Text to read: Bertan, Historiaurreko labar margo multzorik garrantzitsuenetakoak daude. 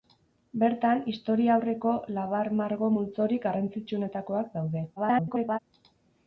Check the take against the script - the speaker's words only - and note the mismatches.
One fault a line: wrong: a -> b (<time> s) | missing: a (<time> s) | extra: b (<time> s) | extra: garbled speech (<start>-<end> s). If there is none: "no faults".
extra: garbled speech (5.0-5.6 s)